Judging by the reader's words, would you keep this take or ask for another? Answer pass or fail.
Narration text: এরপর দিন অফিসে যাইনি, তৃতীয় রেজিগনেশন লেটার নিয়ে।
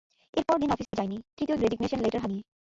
pass